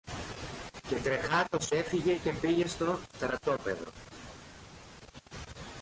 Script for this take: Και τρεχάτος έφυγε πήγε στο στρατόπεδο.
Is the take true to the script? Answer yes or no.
no